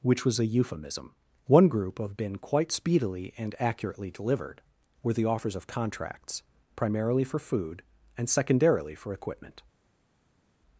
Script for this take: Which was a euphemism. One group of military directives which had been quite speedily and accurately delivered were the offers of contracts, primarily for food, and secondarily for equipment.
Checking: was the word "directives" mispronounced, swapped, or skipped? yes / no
yes